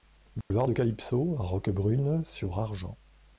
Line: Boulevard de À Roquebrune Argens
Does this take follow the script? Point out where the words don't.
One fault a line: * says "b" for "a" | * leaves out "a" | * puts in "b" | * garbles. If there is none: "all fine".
* puts in "Calypso"
* puts in "sur"